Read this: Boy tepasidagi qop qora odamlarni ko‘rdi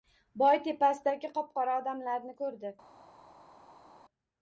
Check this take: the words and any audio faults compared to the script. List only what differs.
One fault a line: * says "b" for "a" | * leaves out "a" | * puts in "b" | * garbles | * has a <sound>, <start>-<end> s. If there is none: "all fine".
all fine